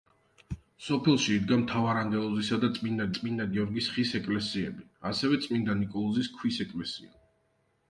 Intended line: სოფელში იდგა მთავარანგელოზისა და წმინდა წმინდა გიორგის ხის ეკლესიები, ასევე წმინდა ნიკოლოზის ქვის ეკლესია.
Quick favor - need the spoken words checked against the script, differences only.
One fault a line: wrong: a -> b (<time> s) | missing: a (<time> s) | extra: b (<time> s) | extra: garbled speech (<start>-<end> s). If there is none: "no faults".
no faults